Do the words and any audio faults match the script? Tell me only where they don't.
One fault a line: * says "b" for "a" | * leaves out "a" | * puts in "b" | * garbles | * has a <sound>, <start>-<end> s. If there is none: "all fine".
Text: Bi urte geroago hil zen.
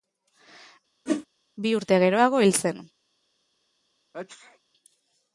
* has a whoosh, 1.1-1.3 s
* has a sneeze, 4.1-4.6 s